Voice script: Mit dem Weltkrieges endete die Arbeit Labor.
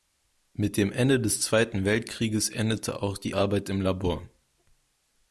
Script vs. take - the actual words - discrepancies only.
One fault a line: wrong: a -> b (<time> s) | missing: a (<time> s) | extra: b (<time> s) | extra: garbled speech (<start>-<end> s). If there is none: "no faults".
extra: Ende des Zweiten (0.9 s)
extra: auch (3.0 s)
extra: im (3.7 s)